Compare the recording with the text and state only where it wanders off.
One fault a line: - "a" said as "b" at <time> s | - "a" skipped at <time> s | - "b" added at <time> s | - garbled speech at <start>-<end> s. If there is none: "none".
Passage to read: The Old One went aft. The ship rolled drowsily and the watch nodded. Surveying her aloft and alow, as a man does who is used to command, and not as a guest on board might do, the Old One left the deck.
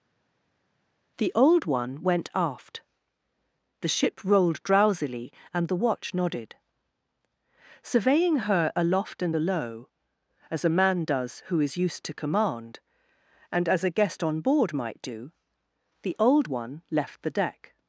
- "not" skipped at 13.7 s